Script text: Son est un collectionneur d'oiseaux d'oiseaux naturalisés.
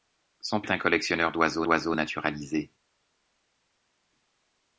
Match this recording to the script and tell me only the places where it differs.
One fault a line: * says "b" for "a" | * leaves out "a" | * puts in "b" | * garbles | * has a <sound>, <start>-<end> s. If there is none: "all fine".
all fine